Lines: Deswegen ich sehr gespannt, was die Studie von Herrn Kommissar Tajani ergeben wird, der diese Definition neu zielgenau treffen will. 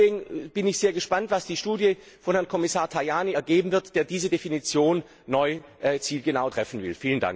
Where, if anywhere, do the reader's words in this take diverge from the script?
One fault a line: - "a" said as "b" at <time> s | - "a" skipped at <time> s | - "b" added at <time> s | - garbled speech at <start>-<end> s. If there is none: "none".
- "bin" added at 0.5 s